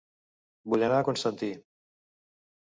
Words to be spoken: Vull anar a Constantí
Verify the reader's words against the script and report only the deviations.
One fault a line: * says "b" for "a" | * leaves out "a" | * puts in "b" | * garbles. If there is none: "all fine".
all fine